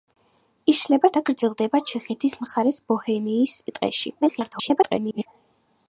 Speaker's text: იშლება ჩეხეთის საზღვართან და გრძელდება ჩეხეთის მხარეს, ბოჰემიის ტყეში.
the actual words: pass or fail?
fail